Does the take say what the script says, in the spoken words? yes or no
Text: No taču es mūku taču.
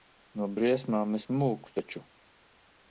no